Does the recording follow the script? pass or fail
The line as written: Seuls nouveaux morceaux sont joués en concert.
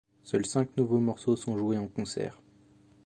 fail